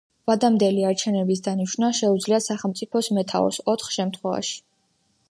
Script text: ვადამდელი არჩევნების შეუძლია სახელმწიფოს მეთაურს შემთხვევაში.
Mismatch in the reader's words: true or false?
true